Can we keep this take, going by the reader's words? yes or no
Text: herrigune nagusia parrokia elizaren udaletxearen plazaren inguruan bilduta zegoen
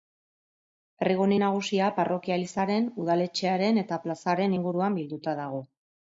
no